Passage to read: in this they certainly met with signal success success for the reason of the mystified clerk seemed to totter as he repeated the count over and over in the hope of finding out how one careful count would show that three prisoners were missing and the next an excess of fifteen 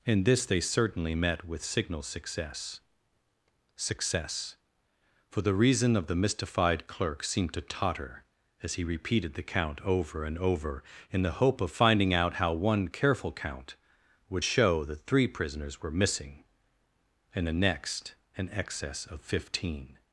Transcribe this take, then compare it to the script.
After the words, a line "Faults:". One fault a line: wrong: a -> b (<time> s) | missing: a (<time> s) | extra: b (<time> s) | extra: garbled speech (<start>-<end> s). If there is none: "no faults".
in this they certainly met with signal success success for the reason of the mystified clerk seemed to totter as he repeated the count over and over in the hope of finding out how one careful count would show that three prisoners were missing and the next an excess of fifteen
Faults:
no faults